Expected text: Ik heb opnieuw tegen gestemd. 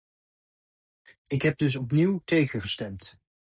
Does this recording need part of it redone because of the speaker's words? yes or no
yes